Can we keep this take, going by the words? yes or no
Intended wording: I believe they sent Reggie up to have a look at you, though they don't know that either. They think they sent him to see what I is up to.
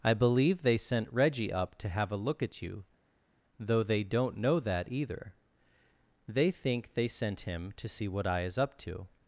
yes